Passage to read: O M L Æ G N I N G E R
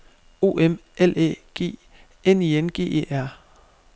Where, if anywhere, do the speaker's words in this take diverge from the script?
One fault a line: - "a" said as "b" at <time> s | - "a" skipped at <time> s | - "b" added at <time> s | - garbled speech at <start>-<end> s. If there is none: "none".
none